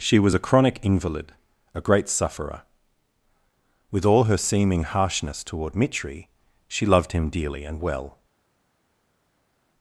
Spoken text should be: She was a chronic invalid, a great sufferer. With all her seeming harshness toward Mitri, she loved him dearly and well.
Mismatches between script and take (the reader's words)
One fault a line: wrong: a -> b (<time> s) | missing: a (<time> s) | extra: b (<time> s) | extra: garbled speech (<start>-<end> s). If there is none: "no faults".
no faults